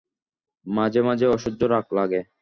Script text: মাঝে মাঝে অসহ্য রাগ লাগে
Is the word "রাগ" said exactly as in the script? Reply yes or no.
yes